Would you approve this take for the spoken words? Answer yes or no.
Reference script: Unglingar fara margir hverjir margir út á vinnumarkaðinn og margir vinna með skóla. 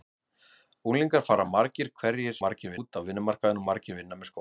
yes